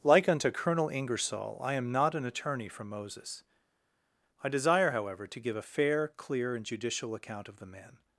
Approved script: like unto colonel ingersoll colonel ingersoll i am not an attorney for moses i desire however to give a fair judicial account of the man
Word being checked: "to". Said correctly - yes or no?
yes